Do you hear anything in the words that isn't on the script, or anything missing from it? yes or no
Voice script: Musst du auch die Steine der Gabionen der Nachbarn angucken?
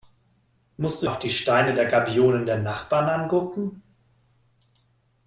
no